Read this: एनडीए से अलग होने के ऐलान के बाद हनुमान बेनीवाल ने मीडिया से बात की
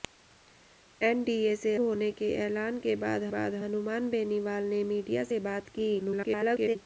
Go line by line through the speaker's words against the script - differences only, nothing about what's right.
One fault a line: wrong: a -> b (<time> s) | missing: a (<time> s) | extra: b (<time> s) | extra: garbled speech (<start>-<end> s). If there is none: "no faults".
missing: अलग (1.8 s)
extra: बाद (3.3 s)
extra: garbled speech (6.0-6.8 s)